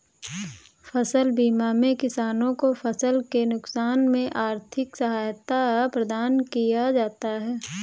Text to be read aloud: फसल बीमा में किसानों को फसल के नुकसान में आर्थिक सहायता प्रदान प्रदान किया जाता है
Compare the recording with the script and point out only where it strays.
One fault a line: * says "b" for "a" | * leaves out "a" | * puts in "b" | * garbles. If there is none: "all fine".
* leaves out "प्रदान"